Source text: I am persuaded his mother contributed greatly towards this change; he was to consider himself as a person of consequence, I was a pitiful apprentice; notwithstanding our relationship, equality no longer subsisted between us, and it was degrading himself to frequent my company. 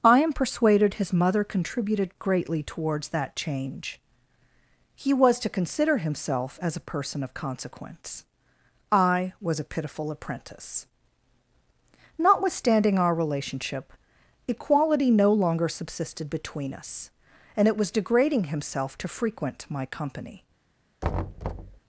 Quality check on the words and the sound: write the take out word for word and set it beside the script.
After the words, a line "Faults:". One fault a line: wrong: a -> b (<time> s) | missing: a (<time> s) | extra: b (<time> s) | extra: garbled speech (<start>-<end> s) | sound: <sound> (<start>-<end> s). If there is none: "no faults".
I am persuaded his mother contributed greatly towards that change; he was to consider himself as a person of consequence, I was a pitiful apprentice; notwithstanding our relationship, equality no longer subsisted between us, and it was degrading himself to frequent my company.
Faults:
wrong: this -> that (3.1 s)
sound: thud (21.0-21.8 s)